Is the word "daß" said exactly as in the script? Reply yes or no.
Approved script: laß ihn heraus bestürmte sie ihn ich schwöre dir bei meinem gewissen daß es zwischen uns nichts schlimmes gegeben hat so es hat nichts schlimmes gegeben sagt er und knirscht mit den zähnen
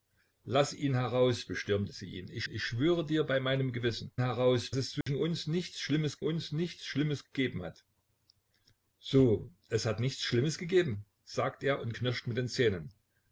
no